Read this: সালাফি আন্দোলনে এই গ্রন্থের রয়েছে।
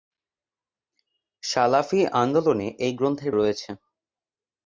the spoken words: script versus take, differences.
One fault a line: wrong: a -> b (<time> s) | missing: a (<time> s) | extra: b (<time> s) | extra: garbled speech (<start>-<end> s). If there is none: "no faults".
no faults